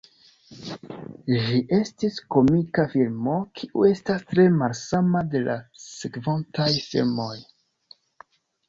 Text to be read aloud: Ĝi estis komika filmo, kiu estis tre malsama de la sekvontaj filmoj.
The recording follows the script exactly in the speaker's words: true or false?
false